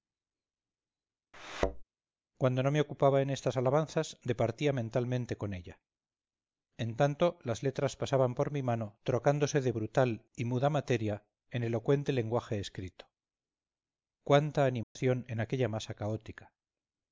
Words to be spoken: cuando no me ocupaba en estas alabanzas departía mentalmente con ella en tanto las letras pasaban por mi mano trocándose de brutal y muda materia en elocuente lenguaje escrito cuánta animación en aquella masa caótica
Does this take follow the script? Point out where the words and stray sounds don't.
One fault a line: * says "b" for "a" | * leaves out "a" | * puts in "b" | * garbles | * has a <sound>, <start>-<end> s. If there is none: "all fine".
* has a thud, 1.3-1.8 s
* has a dropout, 14.8-15.0 s